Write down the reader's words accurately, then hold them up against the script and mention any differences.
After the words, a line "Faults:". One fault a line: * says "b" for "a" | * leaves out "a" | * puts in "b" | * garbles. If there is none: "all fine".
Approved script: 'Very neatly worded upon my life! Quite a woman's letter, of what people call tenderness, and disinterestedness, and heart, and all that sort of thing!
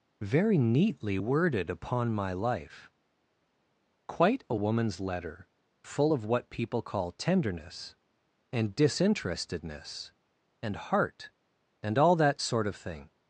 'Very neatly worded upon my life! Quite a woman's letter, full of what people call tenderness, and disinterestedness, and heart, and all that sort of thing!
Faults:
* puts in "full"